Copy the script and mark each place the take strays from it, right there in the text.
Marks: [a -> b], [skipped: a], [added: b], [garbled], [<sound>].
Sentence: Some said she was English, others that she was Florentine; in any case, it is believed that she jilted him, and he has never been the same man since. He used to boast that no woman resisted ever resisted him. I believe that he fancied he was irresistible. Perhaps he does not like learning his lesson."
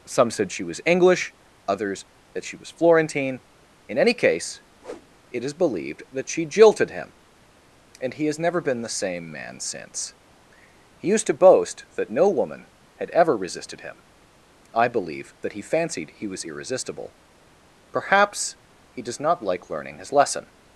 Some said she was English, others that she was Florentine; in any case, [whoosh] it is believed that she jilted him, and he has never been the same man since. He used to boast that no woman [resisted -> had] ever resisted him. I believe that he fancied he was irresistible. Perhaps he does not like learning his lesson."